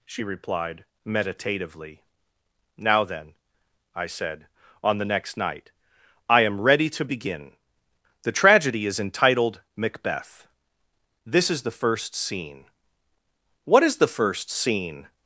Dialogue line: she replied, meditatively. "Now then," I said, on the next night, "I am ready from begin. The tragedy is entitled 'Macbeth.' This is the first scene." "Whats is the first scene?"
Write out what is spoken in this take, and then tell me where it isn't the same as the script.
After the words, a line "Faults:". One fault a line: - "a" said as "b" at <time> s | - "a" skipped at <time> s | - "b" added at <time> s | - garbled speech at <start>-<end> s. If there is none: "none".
she replied, meditatively. "Now then," I said, on the next night, "I am ready to begin. The tragedy is entitled 'Macbeth.' This is the first scene." "What is the first scene?"
Faults:
- "from" said as "to" at 6.9 s
- "Whats" said as "What" at 13.7 s